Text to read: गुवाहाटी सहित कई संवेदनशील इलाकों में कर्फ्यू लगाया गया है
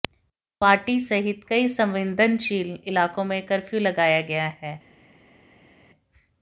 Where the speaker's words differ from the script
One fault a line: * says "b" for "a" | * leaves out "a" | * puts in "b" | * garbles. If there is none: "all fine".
all fine